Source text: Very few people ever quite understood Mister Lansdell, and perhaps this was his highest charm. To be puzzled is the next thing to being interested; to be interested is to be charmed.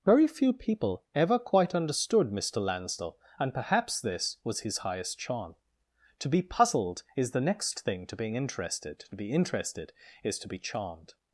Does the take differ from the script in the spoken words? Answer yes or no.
no